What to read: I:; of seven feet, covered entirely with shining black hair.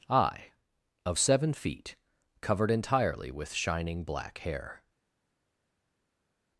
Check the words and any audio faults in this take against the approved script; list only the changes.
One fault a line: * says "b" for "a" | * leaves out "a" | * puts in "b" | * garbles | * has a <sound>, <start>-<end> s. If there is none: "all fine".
all fine